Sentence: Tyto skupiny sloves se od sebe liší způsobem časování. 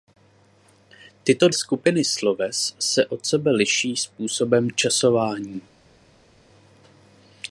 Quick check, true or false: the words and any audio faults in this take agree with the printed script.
true